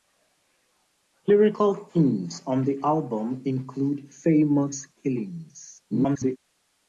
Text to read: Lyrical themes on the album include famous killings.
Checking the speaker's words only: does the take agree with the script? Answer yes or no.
no